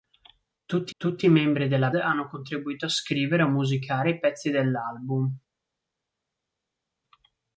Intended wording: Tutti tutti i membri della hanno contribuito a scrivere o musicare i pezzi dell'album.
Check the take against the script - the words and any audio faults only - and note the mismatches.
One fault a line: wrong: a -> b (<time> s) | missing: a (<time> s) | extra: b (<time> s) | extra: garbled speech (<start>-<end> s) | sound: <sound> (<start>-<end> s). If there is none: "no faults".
no faults